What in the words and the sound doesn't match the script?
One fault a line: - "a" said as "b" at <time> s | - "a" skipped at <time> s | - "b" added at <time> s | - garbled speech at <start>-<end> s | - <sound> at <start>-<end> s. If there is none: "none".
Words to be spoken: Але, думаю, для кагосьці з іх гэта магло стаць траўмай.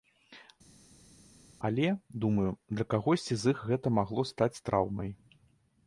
none